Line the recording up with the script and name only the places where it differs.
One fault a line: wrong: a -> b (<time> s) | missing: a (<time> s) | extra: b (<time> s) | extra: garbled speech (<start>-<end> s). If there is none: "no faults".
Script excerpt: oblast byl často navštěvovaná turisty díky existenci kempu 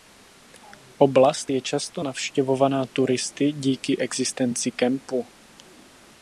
wrong: byl -> je (1.5 s)